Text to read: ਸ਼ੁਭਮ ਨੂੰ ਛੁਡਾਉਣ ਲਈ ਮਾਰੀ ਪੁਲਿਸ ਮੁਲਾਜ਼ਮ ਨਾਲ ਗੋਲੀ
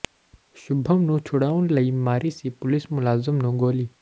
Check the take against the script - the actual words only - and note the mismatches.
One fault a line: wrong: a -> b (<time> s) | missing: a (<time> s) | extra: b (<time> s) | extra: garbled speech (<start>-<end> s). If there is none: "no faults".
extra: ਸੀ (2.3 s)
wrong: ਨਾਲ -> ਨੂੰ (3.4 s)